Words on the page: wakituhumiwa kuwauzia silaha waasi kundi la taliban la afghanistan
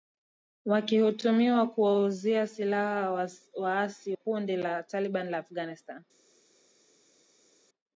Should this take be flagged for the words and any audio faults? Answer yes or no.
no